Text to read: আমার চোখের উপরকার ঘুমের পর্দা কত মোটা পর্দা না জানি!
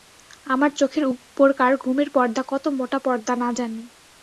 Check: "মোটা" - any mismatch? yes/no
no